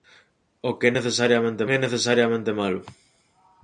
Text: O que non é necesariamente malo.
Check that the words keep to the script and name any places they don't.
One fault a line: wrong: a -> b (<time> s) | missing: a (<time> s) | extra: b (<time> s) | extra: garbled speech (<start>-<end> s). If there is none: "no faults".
wrong: non -> necesariamente (1.0 s)